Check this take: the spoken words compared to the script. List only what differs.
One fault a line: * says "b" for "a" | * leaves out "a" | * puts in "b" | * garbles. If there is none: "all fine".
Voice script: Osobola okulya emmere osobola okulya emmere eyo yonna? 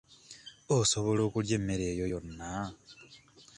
* leaves out "osobola okulya emmere"